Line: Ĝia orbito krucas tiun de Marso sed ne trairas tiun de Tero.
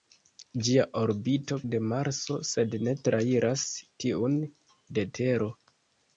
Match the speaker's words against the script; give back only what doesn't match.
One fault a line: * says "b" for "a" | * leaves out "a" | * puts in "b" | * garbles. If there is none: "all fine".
* leaves out "krucas tiun"